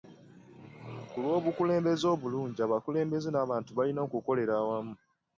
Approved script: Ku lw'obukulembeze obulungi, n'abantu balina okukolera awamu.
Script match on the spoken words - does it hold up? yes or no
no